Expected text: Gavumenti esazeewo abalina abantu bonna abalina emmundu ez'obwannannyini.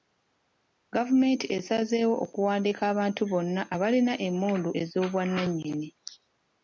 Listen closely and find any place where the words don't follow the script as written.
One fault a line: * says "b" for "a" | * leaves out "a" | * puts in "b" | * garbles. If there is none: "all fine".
* says "okuwandiika" for "abalina"